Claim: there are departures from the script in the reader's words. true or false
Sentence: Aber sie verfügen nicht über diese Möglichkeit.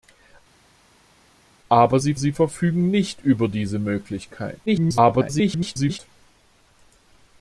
true